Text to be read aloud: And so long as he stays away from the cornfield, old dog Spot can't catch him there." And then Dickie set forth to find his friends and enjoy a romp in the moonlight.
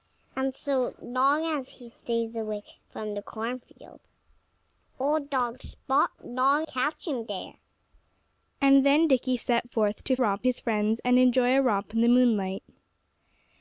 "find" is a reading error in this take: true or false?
true